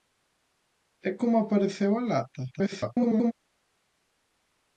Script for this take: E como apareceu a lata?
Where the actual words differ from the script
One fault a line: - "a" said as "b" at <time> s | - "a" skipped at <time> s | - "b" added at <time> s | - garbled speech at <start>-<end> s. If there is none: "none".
- garbled speech at 2.5-3.3 s